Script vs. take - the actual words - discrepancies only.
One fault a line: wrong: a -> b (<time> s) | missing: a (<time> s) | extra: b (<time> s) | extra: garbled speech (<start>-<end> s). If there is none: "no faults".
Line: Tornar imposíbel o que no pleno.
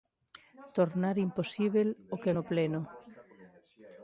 no faults